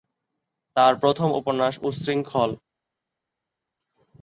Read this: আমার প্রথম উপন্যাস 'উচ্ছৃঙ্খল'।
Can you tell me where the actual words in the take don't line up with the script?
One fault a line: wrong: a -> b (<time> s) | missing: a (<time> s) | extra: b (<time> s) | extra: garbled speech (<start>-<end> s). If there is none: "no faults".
wrong: আমার -> তার (0.8 s)